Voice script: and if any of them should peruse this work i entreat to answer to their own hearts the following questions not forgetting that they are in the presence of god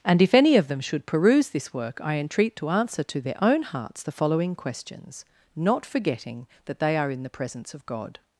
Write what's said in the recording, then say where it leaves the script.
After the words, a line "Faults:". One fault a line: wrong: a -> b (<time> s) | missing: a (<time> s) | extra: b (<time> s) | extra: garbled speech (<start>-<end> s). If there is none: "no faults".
and if any of them should peruse this work i entreat to answer to their own hearts the following questions not forgetting that they are in the presence of god
Faults:
no faults